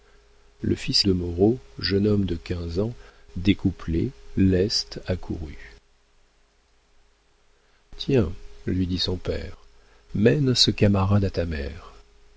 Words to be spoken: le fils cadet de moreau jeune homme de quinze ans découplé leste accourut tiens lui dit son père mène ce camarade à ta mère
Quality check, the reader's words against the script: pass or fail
fail